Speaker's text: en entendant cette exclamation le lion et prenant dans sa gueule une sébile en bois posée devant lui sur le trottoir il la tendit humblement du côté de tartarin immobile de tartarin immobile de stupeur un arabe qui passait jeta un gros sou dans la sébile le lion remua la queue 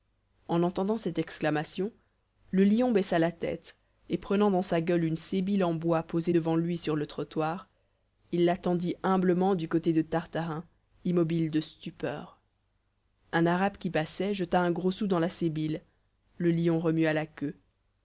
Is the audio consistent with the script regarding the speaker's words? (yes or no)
no